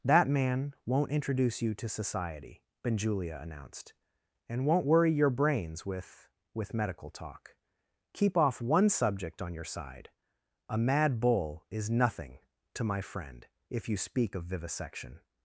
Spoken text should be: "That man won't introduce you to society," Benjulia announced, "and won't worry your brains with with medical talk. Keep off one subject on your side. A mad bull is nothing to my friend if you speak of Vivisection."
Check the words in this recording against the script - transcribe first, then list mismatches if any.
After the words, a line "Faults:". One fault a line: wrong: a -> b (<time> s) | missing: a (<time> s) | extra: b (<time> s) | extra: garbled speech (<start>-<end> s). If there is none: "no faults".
"That man won't introduce you to society," Benjulia announced, "and won't worry your brains with with medical talk. Keep off one subject on your side. A mad bull is nothing to my friend if you speak of Vivisection."
Faults:
no faults